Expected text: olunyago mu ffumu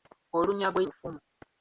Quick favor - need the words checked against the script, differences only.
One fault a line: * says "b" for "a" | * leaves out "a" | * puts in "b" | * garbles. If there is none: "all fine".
all fine